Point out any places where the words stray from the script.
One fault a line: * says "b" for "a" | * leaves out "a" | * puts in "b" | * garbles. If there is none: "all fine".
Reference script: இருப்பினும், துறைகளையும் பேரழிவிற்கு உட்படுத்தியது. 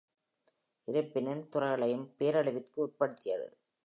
all fine